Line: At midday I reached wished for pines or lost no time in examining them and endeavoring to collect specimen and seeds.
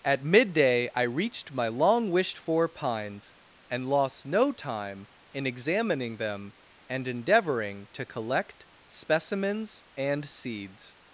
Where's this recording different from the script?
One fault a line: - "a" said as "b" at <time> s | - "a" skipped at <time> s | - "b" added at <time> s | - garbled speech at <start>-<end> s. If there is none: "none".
- "my long" added at 1.5 s
- "or" said as "and" at 3.7 s
- "specimen" said as "specimens" at 8.9 s